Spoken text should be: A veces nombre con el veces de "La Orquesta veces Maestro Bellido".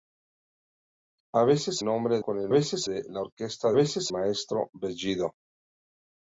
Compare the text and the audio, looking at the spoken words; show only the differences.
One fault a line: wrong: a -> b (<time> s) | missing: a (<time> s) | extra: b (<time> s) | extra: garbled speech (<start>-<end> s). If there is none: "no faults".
no faults